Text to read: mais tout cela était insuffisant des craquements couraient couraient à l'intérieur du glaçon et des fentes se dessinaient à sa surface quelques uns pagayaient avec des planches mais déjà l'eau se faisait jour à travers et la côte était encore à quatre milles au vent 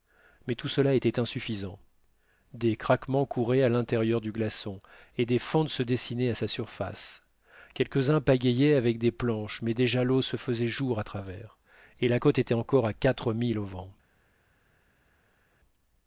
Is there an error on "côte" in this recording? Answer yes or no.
no